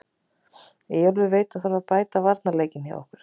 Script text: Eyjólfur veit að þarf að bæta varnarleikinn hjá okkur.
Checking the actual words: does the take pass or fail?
pass